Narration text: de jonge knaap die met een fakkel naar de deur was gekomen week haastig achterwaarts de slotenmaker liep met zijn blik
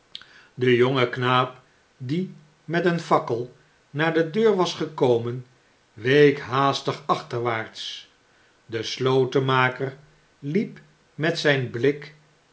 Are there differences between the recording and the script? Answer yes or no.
no